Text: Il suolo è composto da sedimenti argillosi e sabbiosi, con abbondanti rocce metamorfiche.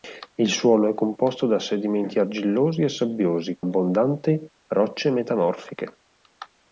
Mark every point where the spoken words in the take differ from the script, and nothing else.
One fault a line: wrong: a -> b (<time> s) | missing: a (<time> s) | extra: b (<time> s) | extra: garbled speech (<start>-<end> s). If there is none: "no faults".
missing: con (3.6 s)